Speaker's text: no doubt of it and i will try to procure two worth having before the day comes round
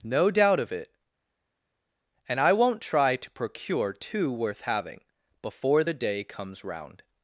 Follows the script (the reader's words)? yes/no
no